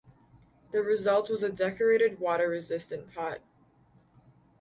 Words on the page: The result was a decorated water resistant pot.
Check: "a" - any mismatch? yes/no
no